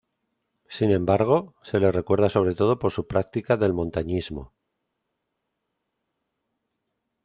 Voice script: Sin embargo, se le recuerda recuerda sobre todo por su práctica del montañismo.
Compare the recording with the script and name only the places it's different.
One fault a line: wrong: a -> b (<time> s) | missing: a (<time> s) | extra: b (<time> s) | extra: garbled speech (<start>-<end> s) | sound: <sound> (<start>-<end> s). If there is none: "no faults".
missing: recuerda (2.3 s)